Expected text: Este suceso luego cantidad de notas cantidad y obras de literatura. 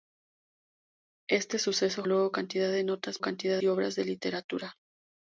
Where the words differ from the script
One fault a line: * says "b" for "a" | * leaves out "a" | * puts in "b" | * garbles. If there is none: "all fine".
all fine